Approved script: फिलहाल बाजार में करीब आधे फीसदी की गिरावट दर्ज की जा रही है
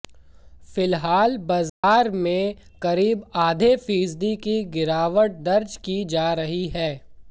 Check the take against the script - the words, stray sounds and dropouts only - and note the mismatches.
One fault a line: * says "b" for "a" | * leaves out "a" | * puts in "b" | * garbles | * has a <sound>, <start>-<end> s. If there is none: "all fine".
* has a dropout, 1.7-1.8 s